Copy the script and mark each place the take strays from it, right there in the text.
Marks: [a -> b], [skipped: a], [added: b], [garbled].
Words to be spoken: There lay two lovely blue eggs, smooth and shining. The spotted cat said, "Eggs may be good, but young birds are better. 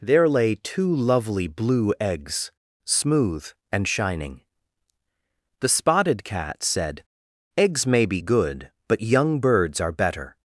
There lay two lovely blue eggs, smooth and shining. The spotted cat said, "Eggs may be good, but young birds are better.